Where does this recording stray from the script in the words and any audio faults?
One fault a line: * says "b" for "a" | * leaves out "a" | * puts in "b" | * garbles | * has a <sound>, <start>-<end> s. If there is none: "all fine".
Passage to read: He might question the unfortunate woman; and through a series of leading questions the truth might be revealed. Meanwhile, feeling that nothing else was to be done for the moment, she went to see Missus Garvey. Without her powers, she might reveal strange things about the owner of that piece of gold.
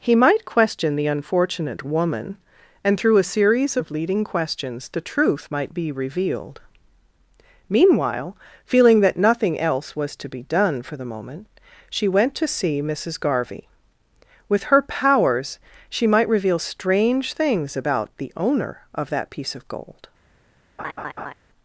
* says "With" for "Without"
* has a laugh, 20.8-21.3 s